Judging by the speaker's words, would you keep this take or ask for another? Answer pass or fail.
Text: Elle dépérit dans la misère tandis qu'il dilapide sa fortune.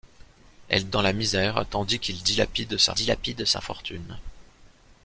fail